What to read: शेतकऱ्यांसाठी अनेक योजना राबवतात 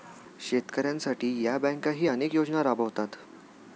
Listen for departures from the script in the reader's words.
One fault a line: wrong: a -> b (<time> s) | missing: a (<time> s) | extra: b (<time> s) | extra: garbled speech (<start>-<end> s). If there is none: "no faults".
extra: या बँकाही (1.4 s)